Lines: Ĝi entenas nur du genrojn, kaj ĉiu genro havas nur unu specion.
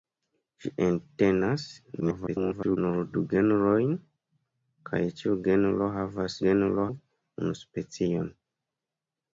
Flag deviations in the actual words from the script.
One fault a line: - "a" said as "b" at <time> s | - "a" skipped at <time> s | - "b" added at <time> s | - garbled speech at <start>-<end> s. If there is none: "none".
- garbled speech at 2.0-2.8 s
- "nur" said as "genro" at 6.4 s